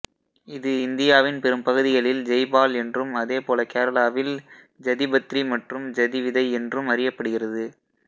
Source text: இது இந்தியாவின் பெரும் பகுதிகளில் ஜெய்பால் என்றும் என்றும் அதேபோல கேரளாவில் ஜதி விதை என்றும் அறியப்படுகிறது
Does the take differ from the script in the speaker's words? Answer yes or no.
yes